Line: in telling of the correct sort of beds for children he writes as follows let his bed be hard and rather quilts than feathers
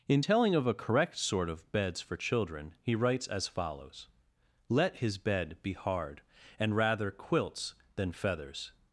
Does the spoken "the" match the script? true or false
false